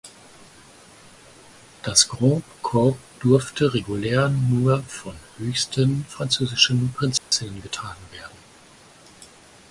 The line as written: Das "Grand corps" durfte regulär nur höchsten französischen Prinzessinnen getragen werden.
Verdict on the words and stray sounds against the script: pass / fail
fail